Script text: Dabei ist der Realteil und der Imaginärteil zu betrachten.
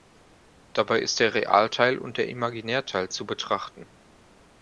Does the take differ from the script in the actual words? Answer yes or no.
no